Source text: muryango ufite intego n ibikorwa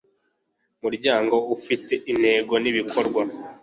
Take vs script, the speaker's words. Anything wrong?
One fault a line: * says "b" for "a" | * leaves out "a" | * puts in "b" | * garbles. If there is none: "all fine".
all fine